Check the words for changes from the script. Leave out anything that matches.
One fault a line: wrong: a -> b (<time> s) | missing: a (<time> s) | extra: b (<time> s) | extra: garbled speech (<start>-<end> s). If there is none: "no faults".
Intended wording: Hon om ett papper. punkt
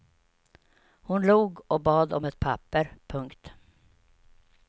extra: log och bad (1.2 s)